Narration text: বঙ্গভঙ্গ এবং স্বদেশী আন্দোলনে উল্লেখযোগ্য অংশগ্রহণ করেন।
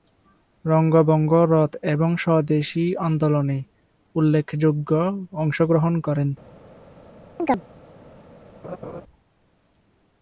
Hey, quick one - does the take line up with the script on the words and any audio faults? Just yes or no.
no